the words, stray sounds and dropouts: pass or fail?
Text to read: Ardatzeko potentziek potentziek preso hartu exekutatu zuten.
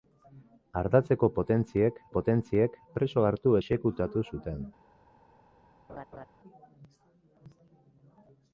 fail